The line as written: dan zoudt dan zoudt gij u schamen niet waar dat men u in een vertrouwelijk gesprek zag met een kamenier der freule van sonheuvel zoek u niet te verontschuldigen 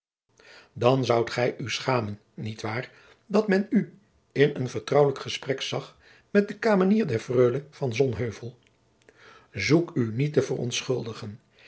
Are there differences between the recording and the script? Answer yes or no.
yes